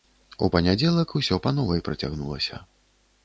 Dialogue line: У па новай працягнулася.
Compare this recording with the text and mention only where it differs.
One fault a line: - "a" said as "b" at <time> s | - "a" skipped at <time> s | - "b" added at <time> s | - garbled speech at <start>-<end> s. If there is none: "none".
- "панядзелак усё" added at 0.5 s